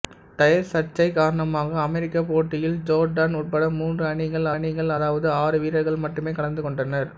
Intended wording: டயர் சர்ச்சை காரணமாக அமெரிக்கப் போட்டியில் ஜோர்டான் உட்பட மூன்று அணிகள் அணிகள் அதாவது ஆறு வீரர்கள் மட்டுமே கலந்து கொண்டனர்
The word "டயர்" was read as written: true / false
true